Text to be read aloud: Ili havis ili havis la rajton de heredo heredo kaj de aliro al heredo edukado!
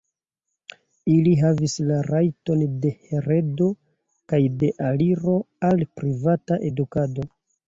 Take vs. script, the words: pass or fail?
fail